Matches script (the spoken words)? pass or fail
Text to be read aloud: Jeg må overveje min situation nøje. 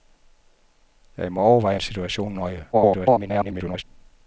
fail